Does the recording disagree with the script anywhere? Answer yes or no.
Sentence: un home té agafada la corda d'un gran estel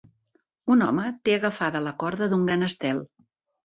no